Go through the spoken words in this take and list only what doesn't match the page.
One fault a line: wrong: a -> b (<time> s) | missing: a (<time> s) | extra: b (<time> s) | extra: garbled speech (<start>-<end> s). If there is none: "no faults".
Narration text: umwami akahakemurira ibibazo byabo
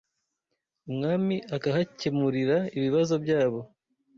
no faults